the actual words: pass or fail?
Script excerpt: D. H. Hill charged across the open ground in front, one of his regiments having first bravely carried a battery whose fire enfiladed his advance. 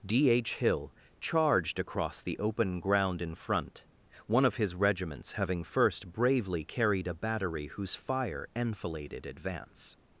fail